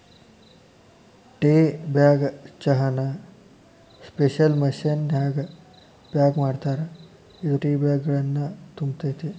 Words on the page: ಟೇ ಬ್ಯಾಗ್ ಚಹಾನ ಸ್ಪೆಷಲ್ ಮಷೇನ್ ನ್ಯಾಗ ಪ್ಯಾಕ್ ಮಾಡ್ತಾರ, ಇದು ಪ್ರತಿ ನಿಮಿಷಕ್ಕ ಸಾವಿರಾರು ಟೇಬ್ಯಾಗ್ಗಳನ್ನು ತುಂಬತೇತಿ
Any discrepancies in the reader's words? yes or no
yes